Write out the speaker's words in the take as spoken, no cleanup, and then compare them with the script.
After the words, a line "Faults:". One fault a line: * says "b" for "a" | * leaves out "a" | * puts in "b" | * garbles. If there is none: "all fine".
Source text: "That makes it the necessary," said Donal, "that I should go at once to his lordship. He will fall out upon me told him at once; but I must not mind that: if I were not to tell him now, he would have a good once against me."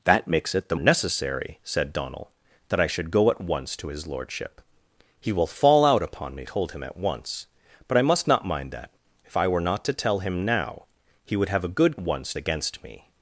"That makes it the necessary," said Donal, "that I should go at once to his lordship. He will fall out upon me told him at once; but I must not mind that: if I were not to tell him now, he would have a good once against me."
Faults:
all fine